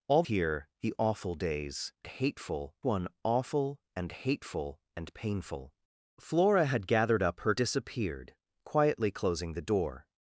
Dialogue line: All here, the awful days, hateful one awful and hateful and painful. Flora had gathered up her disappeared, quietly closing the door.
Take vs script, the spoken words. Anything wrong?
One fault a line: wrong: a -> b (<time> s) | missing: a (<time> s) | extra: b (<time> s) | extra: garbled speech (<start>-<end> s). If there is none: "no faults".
no faults